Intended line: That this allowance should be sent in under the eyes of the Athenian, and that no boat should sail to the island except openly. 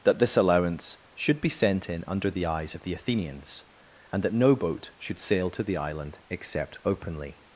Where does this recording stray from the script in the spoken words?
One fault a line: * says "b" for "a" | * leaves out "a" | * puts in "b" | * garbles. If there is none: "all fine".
* says "Athenians" for "Athenian"